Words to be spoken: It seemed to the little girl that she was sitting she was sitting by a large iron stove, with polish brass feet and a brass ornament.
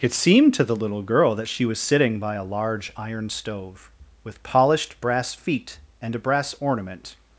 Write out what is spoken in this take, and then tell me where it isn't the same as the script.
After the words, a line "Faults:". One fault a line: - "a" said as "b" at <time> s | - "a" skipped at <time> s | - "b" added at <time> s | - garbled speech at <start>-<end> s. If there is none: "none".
It seemed to the little girl that she was sitting by a large iron stove, with polished brass feet and a brass ornament.
Faults:
- "she was sitting" skipped at 2.2 s
- "polish" said as "polished" at 4.4 s